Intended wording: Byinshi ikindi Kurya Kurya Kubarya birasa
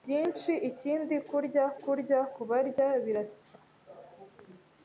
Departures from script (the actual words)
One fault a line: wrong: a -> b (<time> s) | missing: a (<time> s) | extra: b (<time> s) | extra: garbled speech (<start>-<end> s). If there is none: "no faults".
no faults